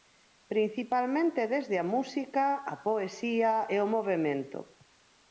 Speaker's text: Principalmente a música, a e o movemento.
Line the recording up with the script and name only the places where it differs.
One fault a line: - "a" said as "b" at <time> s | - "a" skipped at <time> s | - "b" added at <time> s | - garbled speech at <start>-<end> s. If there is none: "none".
- "desde" added at 1.5 s
- "poesía" added at 2.9 s